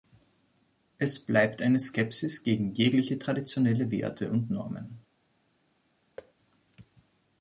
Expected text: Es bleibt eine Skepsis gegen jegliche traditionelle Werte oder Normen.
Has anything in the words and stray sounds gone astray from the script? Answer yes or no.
yes